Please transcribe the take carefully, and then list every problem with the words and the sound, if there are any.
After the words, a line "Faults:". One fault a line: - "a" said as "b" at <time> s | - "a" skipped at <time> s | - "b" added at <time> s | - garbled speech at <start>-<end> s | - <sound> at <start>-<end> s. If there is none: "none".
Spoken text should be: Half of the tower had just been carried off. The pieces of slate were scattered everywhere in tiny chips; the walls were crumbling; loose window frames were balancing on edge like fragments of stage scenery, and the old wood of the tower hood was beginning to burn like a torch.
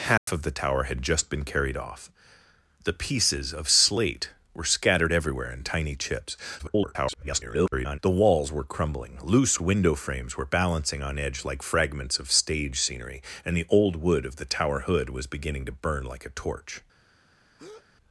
Half of the tower had just been carried off. The pieces of slate were scattered everywhere in tiny chips; [garbled] the walls were crumbling; loose window frames were balancing on edge like fragments of stage scenery, and the old wood of the tower hood was beginning to burn like a torch.
Faults:
- dropout at 0.2-0.3 s
- garbled speech at 6.6-8.0 s
- breath at 17.6-17.9 s